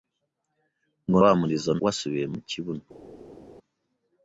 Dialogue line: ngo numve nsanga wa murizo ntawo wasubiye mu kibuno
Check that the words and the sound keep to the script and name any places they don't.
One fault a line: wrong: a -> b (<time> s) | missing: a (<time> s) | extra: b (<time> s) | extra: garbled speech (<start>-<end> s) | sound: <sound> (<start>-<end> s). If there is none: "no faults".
missing: numve nsanga (1.2 s)
missing: ntawo (1.7 s)